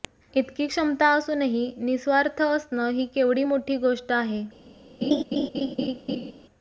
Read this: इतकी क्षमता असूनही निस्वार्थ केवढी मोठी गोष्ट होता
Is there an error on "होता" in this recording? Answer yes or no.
yes